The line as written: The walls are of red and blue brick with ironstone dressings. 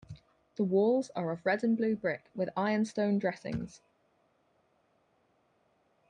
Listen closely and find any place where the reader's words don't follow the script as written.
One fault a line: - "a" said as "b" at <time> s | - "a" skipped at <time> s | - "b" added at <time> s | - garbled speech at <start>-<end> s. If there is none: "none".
none